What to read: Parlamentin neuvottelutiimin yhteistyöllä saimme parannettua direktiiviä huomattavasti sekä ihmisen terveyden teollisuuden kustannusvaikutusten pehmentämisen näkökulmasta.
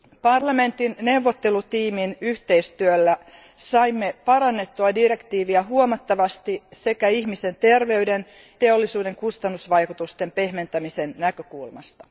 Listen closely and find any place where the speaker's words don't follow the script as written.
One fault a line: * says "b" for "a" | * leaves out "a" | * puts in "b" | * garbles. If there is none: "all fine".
all fine